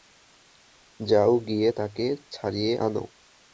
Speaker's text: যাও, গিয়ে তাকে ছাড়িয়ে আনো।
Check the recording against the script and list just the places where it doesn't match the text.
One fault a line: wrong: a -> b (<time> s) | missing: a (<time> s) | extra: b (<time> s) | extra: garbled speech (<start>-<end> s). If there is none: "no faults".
no faults